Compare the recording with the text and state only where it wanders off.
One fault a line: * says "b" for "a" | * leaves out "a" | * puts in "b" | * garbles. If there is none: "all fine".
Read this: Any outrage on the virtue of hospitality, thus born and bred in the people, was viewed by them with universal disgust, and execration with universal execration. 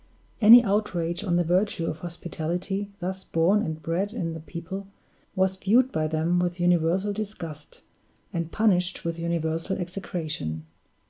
* says "punished" for "execration"